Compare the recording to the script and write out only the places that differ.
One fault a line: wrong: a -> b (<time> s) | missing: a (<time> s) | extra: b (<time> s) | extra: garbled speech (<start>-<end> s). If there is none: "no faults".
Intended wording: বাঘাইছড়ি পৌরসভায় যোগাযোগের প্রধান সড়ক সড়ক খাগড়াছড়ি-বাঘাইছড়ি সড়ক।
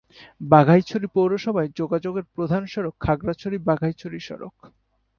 missing: সড়ক (3.0 s)